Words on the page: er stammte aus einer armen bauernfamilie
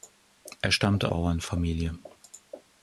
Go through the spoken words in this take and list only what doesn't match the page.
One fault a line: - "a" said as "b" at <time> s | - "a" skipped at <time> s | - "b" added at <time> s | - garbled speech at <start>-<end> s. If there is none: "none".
- "aus einer armen" skipped at 1.1 s